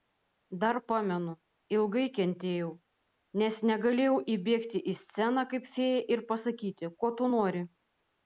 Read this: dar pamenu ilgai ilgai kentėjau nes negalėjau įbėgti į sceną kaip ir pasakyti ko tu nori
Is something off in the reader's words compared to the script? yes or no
yes